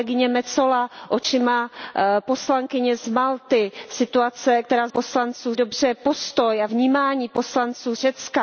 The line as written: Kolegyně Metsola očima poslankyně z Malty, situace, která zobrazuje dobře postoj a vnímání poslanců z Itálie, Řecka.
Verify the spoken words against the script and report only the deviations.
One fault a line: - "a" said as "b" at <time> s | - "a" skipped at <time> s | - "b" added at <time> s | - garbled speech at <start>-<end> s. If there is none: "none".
- "zobrazuje" said as "poslanců" at 4.9 s
- "z Itálie" skipped at 7.9 s